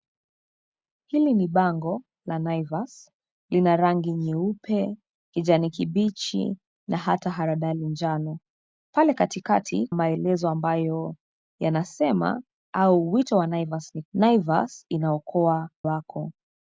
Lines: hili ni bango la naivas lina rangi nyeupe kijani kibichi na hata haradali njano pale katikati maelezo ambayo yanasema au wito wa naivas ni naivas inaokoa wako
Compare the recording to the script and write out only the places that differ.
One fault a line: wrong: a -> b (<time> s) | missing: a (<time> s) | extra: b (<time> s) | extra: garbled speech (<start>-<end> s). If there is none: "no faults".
no faults